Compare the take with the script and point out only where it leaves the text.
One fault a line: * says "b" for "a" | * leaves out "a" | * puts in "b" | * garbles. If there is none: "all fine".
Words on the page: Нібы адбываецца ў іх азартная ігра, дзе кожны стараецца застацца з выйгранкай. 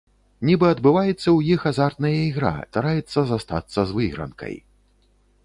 * leaves out "дзе кожны"